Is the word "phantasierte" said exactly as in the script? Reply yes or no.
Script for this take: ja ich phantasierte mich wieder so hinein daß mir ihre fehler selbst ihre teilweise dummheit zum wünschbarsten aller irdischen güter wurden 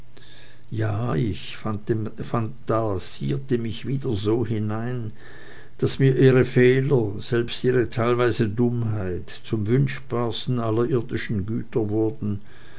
yes